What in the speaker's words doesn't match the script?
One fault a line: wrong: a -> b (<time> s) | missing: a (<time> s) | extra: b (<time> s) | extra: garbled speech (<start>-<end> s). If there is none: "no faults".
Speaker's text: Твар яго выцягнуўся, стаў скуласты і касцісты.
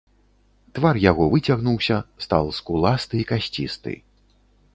no faults